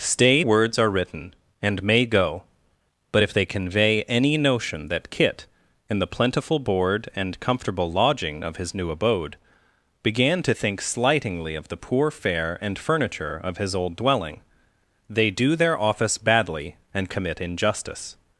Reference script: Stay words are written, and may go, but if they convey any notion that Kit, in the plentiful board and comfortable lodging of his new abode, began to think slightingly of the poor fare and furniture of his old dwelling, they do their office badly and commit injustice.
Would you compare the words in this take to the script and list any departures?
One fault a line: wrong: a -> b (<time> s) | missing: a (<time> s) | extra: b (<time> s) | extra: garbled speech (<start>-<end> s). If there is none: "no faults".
no faults